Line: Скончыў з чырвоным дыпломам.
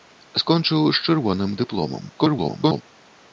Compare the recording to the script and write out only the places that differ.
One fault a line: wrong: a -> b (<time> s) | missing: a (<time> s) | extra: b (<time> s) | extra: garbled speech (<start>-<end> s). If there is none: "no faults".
extra: garbled speech (2.2-2.8 s)